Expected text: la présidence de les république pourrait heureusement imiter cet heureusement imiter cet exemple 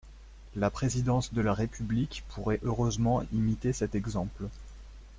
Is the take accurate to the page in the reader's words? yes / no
no